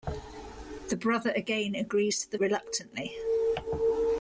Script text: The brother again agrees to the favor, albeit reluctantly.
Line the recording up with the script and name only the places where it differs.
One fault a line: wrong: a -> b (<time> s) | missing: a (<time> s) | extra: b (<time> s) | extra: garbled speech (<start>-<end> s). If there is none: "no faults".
missing: favor albeit (2.4 s)